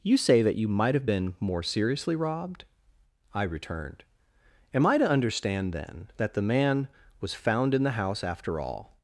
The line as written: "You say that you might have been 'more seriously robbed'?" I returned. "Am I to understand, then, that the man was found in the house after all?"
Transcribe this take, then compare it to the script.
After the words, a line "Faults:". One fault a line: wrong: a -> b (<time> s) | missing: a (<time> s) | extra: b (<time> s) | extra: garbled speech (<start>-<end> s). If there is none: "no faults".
"You say that you might have been 'more seriously robbed'?" I returned. "Am I to understand, then, that the man was found in the house after all?"
Faults:
no faults